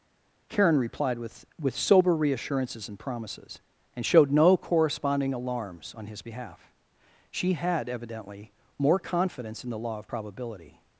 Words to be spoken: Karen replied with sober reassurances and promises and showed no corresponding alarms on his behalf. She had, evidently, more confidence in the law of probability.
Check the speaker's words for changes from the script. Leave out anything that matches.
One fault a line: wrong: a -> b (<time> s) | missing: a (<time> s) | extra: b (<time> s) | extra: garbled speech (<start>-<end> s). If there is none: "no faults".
extra: with (1.6 s)